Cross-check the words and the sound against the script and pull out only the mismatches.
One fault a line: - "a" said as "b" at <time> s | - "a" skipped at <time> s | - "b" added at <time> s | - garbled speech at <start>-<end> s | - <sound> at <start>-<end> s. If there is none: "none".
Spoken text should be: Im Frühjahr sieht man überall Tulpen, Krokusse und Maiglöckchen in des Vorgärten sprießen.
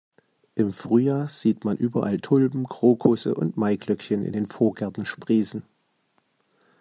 - "des" said as "den" at 4.3 s